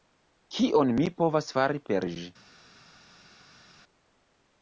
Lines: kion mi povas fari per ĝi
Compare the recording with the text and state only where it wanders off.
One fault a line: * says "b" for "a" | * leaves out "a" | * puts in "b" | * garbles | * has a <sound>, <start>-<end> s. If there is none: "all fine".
all fine